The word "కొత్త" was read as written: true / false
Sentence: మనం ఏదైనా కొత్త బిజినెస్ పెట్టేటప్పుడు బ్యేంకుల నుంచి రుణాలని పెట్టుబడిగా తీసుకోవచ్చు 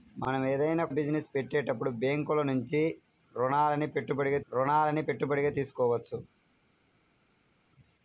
false